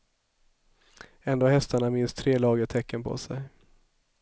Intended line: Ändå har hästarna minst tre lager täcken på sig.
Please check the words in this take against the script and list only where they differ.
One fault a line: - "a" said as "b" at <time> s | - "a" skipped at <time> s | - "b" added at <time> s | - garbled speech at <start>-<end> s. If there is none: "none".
none